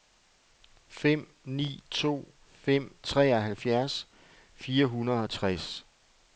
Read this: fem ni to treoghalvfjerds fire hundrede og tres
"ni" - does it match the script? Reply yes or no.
yes